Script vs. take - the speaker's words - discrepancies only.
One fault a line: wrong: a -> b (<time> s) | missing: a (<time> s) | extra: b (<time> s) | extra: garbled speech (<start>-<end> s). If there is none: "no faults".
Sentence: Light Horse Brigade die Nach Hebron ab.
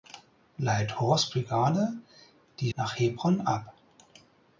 no faults